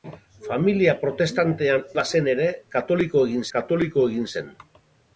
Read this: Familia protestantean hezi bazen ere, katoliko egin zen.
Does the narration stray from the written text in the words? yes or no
yes